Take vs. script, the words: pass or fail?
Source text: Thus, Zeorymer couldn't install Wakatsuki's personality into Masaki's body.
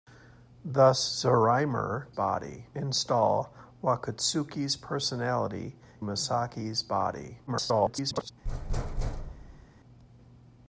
fail